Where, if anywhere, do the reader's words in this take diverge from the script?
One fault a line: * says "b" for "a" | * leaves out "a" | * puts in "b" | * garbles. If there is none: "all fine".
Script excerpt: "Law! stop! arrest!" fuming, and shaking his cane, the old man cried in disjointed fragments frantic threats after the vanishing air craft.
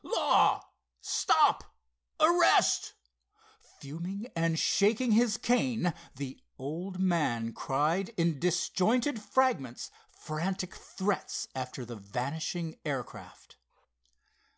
all fine